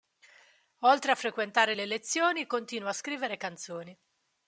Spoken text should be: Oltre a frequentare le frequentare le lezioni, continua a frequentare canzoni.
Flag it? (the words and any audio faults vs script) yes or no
yes